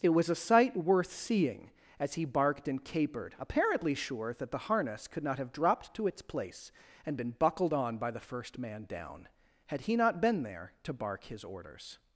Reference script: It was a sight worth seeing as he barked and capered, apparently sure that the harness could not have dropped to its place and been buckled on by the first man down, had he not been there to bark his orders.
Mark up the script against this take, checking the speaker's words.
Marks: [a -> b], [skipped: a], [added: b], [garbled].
It was a sight worth seeing as he barked and capered, apparently sure that the harness could not have dropped to its place and been buckled on by the first man down, had he not been there to bark his orders.